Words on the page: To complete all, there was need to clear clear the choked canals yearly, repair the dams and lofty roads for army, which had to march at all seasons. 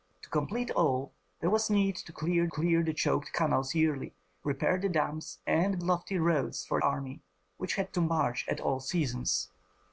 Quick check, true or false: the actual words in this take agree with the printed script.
true